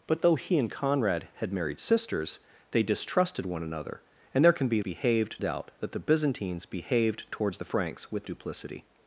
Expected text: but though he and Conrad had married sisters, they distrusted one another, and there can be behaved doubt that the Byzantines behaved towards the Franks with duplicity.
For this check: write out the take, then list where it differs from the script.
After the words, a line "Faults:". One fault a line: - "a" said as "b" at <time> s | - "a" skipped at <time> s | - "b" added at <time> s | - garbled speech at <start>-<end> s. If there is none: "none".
but though he and Conrad had married sisters, they distrusted one another, and there can be behaved doubt that the Byzantines behaved towards the Franks with duplicity.
Faults:
none